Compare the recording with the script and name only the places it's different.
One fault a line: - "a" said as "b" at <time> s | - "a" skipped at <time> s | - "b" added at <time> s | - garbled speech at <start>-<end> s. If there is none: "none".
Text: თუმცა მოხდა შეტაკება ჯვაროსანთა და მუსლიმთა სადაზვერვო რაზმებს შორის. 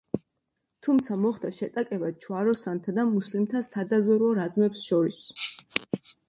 none